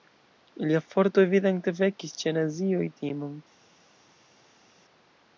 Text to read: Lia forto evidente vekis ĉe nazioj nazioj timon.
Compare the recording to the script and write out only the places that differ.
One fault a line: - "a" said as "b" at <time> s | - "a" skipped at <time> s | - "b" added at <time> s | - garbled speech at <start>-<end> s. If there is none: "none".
- "nazioj" skipped at 2.9 s